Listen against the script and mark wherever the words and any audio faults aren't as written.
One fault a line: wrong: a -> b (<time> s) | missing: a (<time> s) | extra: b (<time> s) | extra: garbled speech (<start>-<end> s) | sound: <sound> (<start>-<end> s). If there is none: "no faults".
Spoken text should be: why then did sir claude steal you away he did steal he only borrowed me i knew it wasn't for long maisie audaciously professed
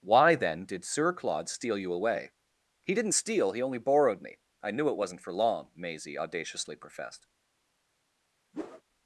wrong: did -> didn't (3.0 s)
sound: whoosh (8.5-8.8 s)